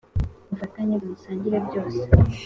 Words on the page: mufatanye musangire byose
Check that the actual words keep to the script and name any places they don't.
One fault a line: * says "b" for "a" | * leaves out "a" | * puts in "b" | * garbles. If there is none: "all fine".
all fine